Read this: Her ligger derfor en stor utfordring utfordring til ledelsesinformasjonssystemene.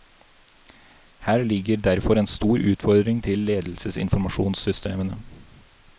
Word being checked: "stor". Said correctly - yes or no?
yes